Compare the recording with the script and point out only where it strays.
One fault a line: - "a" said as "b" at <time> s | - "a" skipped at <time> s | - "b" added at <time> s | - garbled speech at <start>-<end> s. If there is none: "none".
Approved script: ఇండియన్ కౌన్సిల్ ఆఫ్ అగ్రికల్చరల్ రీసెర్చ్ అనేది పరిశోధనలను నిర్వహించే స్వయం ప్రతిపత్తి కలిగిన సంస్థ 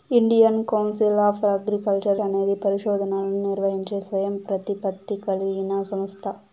- "రీసెర్చ్" skipped at 2.2 s